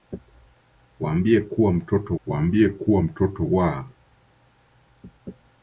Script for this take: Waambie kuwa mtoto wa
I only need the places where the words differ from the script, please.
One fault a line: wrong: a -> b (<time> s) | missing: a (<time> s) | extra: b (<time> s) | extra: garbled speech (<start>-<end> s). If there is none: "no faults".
extra: waambie kuwa mtoto (2.3 s)